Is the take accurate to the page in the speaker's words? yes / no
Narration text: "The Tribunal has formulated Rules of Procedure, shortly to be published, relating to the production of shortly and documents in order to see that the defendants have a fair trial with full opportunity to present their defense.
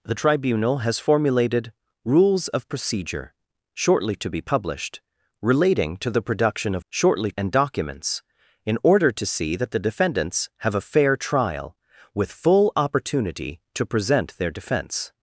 yes